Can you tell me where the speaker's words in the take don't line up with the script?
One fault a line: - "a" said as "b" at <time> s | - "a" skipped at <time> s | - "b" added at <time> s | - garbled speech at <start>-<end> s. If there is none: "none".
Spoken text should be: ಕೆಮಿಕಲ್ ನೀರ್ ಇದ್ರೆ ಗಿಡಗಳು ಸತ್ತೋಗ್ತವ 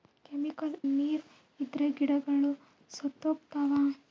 none